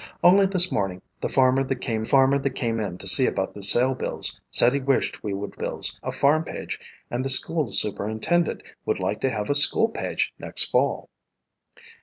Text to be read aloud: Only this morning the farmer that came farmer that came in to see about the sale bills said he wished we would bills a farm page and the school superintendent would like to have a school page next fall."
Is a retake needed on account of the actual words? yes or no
no